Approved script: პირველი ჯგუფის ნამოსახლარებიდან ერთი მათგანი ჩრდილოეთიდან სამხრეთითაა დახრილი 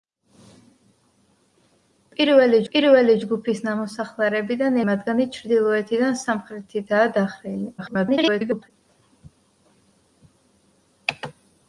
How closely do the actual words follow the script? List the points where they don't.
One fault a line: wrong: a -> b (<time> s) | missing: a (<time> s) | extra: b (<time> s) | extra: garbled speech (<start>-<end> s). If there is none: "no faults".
extra: პირველი (2.7 s)
missing: ერთი (4.8 s)
extra: garbled speech (7.8-8.7 s)